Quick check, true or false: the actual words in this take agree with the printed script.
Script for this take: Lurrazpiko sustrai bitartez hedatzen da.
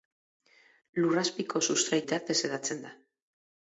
true